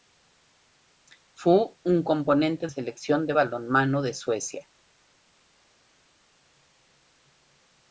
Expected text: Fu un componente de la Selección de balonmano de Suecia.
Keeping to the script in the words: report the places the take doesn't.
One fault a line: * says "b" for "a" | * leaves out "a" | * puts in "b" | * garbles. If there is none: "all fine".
* leaves out "de la"